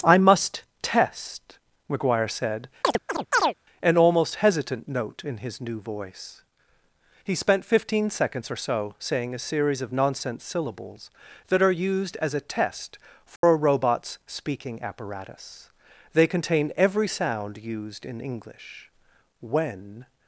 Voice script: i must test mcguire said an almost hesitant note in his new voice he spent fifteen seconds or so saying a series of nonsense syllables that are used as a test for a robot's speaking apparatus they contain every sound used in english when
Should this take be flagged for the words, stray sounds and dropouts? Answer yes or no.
yes